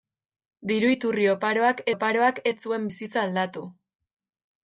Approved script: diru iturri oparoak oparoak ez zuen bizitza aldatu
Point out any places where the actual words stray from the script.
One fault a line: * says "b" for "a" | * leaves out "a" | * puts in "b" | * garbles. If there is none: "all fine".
all fine